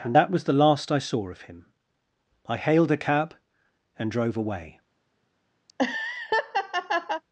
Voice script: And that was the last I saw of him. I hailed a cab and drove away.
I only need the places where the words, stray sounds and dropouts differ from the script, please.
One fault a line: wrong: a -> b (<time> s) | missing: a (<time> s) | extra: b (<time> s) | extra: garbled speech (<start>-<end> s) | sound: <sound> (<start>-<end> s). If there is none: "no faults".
sound: laugh (5.7-7.2 s)